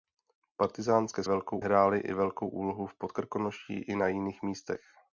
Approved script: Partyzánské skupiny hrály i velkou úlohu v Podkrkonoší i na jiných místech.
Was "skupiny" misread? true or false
true